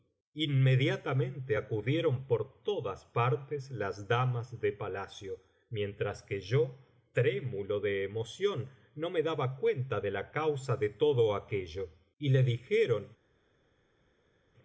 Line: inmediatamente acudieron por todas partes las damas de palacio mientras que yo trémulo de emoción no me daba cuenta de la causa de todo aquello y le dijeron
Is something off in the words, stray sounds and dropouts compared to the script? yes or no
no